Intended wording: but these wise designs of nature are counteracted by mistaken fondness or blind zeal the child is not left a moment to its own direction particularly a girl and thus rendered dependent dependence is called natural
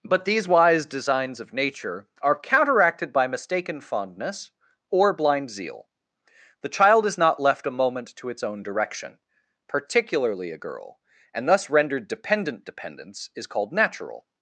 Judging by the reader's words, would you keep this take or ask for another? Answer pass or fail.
pass